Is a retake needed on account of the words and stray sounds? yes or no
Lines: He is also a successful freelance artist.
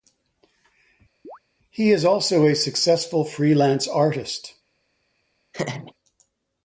yes